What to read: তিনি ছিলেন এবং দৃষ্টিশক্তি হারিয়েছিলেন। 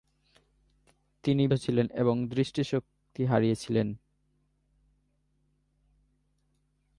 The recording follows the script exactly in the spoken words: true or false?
true